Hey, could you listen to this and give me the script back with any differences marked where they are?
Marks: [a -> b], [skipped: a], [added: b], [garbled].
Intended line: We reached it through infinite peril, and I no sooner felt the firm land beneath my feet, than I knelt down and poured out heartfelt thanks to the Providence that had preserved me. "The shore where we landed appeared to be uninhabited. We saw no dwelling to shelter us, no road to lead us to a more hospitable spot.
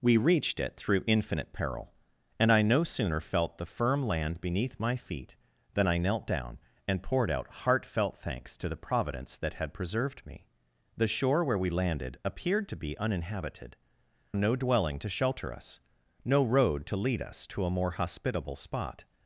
We reached it through infinite peril, and I no sooner felt the firm land beneath my feet, than I knelt down and poured out heartfelt thanks to the Providence that had preserved me. "The shore where we landed appeared to be uninhabited. [skipped: We saw] no dwelling to shelter us, no road to lead us to a more hospitable spot.